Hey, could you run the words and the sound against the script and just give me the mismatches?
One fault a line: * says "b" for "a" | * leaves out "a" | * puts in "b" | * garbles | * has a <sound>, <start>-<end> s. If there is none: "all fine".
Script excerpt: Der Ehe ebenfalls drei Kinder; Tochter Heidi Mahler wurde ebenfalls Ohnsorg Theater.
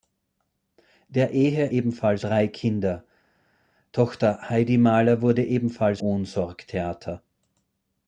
all fine